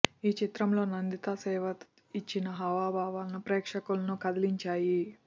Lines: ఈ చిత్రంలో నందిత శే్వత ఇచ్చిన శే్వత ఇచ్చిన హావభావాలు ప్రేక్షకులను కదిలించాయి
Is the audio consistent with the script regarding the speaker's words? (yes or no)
no